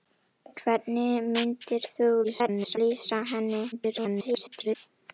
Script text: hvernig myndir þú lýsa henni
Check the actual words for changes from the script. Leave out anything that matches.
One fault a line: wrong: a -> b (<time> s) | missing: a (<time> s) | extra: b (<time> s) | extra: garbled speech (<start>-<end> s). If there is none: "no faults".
extra: garbled speech (2.2-2.8 s)
extra: garbled speech (3.7-4.8 s)